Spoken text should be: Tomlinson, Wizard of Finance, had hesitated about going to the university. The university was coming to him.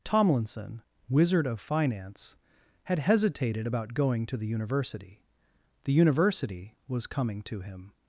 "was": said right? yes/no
yes